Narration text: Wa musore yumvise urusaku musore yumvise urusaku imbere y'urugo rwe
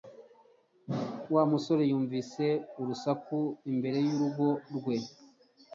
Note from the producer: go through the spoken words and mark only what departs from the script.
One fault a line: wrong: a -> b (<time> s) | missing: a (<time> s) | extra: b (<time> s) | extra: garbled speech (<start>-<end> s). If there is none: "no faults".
missing: musore yumvise urusaku (3.4 s)